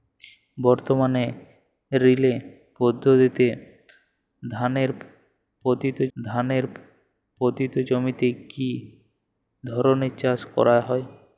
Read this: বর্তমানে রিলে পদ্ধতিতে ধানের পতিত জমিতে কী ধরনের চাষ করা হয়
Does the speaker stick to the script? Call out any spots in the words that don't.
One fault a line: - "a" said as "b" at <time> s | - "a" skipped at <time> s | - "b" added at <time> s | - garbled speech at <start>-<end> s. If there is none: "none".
- "ধানের পতিত" added at 6.2 s